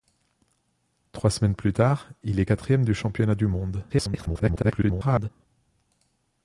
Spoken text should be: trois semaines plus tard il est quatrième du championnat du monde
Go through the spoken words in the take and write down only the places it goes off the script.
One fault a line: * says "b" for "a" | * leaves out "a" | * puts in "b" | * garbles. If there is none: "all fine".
* garbles